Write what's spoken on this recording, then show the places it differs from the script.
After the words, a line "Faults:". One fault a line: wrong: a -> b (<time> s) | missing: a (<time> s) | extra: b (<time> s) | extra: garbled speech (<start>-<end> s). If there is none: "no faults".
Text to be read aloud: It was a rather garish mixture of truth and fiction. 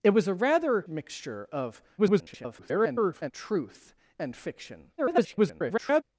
It was a rather mixture of [garbled] truth and fiction. [garbled]
Faults:
missing: garish (0.8 s)
extra: garbled speech (2.0-3.3 s)
extra: garbled speech (5.0-6.0 s)